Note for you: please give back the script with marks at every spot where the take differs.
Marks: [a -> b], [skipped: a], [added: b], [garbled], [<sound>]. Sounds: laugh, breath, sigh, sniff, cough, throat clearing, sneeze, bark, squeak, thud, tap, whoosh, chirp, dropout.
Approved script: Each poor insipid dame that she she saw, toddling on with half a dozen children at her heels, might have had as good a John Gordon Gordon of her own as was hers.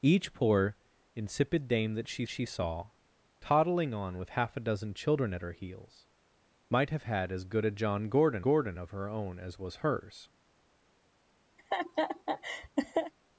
Each poor insipid dame that she she saw, toddling on with half a dozen children at her heels, might have had as good a John Gordon Gordon of her own as was hers. [laugh]